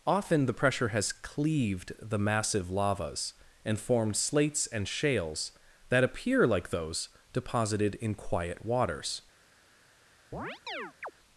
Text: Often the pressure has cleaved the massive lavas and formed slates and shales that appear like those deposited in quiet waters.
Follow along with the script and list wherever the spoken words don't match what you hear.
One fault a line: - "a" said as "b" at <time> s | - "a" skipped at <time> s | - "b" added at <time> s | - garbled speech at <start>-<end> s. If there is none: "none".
none